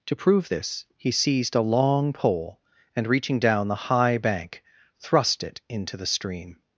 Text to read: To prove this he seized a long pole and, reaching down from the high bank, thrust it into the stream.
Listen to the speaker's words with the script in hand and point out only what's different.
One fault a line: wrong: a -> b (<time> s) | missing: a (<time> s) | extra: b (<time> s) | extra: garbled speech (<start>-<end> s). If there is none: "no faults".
missing: from (3.7 s)